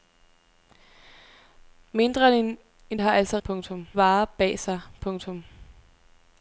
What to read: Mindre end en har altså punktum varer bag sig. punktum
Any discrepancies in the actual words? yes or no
no